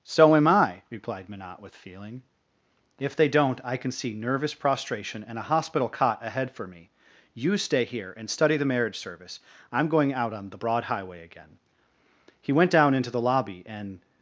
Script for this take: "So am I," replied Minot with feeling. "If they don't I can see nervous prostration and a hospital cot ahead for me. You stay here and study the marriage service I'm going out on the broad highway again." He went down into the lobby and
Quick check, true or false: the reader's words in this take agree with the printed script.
true